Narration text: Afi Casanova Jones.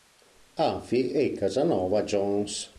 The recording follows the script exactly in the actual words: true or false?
false